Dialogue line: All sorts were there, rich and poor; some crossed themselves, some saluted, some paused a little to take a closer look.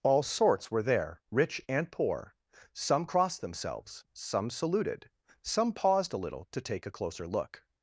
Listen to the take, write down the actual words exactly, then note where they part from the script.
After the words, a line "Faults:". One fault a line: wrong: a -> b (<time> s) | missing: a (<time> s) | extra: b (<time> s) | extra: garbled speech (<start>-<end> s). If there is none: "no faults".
All sorts were there, rich and poor; some crossed themselves, some saluted, some paused a little to take a closer look.
Faults:
no faults